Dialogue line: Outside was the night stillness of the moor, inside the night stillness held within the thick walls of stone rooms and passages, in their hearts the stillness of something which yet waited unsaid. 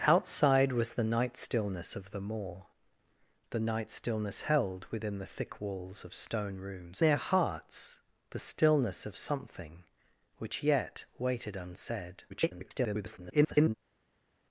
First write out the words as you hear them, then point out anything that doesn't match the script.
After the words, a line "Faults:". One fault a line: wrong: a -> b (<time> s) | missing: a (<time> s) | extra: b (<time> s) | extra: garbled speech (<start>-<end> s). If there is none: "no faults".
Outside was the night stillness of the moor, the night stillness held within the thick walls of stone rooms their hearts the stillness of something which yet waited unsaid. [garbled]
Faults:
missing: inside (2.6 s)
missing: and passages in (7.0 s)
extra: garbled speech (12.3-13.7 s)